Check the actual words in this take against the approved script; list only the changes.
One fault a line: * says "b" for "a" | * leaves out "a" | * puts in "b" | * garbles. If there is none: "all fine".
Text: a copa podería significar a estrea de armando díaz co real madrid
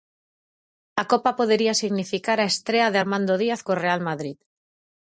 all fine